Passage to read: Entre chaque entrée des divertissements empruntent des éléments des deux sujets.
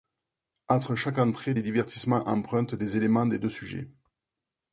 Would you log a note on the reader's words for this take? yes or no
no